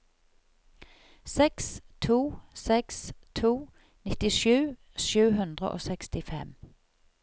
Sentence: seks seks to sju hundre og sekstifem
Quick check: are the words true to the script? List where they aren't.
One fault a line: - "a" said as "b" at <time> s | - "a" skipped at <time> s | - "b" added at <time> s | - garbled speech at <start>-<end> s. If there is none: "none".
- "to" added at 2.0 s
- "nittisju" added at 4.1 s